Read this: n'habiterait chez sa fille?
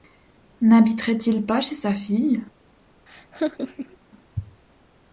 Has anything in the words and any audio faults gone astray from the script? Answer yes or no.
yes